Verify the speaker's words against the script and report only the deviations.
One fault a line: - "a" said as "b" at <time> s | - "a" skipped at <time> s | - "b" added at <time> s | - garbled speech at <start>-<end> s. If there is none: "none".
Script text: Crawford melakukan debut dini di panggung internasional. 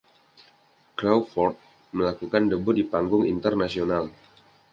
- "dini" skipped at 2.7 s